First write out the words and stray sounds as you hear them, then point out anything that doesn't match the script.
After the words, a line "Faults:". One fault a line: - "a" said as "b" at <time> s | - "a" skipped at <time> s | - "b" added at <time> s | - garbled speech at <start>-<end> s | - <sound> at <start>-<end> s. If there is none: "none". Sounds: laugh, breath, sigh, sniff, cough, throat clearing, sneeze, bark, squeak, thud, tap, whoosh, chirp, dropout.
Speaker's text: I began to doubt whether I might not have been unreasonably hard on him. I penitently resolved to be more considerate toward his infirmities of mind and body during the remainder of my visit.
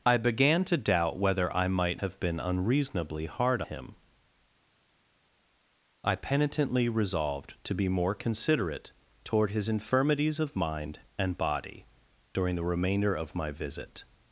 I began to doubt whether I might have been unreasonably hard him. I penitently resolved to be more considerate toward his infirmities of mind and body during the remainder of my visit.
Faults:
- "not" skipped at 2.0 s
- "on" skipped at 3.6 s